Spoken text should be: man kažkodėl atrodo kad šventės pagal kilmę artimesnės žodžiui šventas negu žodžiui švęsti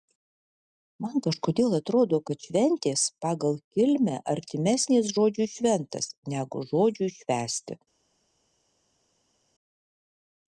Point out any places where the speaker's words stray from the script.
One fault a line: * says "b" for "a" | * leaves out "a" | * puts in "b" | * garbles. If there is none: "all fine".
all fine